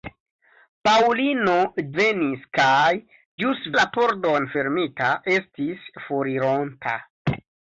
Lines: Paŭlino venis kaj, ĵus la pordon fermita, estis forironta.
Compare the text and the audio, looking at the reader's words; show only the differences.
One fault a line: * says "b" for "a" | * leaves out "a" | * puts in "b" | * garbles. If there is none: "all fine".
all fine